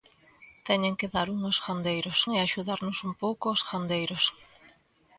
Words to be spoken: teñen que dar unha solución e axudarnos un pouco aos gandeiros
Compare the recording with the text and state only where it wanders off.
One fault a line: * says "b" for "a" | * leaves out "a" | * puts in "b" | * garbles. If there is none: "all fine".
* says "gandeiros" for "solución"